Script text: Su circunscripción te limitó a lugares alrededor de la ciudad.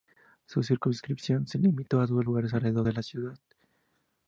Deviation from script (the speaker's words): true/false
true